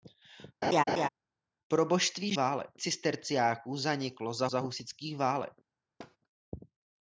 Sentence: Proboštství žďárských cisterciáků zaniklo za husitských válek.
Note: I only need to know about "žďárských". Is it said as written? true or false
false